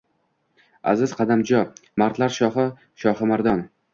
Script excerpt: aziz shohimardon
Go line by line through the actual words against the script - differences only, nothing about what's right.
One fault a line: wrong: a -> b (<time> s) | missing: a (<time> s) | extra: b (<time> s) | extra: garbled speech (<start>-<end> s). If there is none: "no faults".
extra: qadamjo mardlar shohi (1.2 s)